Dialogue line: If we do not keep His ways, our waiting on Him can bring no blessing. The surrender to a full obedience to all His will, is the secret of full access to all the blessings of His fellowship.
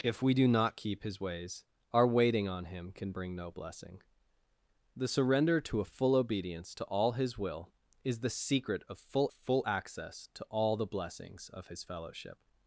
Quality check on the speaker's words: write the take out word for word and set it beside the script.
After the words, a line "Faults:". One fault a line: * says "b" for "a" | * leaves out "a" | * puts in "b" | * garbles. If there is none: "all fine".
If we do not keep His ways, our waiting on Him can bring no blessing. The surrender to a full obedience to all His will, is the secret of full full access to all the blessings of His fellowship.
Faults:
* puts in "full"